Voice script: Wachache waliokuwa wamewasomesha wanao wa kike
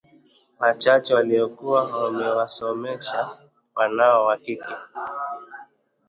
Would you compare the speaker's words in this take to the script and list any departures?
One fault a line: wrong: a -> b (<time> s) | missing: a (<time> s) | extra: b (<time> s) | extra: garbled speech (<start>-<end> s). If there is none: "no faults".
no faults